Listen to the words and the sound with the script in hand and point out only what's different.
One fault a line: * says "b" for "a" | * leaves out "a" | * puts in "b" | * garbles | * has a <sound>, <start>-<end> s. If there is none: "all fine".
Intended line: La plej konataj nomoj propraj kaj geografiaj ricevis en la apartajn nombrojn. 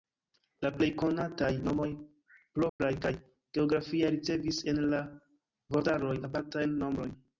* has a dropout, 2.7-2.8 s
* puts in "vortaroj"